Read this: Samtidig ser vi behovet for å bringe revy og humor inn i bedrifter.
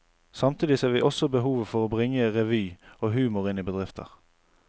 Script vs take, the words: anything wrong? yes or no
yes